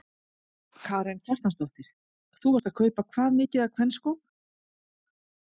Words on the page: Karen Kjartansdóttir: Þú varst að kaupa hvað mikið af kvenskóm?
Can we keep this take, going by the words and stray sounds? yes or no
yes